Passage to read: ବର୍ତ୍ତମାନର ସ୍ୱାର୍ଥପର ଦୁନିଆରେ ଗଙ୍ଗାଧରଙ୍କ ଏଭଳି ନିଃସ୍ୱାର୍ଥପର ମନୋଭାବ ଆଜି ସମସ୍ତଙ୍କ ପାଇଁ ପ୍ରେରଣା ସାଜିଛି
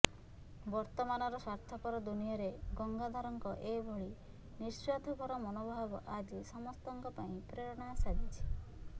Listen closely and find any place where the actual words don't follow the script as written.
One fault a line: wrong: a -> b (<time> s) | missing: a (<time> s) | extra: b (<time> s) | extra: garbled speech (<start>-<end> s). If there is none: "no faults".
no faults